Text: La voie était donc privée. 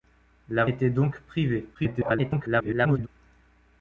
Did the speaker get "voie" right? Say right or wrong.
wrong